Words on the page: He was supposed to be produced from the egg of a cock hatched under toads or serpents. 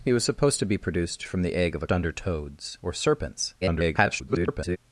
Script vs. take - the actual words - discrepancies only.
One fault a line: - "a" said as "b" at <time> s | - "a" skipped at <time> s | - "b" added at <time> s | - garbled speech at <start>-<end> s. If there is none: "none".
- "cock hatched" skipped at 1.9 s
- garbled speech at 3.6-4.8 s